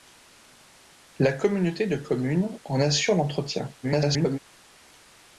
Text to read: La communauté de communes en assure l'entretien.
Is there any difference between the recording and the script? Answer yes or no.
yes